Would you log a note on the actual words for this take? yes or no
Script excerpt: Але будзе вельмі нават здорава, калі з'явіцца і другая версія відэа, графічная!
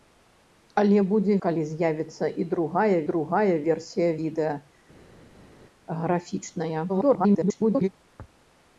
yes